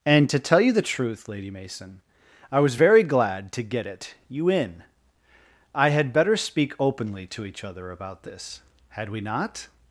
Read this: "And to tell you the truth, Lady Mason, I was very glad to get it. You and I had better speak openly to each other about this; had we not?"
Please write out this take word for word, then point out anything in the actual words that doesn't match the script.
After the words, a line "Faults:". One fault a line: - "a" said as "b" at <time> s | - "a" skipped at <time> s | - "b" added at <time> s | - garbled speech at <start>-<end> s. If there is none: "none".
"And to tell you the truth, Lady Mason, I was very glad to get it. You in I had better speak openly to each other about this; had we not?"
Faults:
- "and" said as "in" at 4.5 s